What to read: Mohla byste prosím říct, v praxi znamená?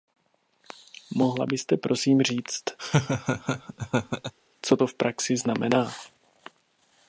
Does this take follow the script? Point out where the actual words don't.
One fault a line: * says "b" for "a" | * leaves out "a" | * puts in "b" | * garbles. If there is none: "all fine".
* puts in "co to"